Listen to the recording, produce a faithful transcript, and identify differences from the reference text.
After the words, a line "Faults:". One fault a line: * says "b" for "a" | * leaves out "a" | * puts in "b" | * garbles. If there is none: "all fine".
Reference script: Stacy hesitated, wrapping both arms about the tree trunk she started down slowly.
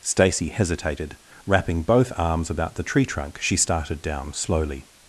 Stacy hesitated, wrapping both arms about the tree trunk she started down slowly.
Faults:
all fine